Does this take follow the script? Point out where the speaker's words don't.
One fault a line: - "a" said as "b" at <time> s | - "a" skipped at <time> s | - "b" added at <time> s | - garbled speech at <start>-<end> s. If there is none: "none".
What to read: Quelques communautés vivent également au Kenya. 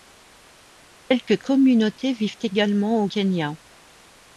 none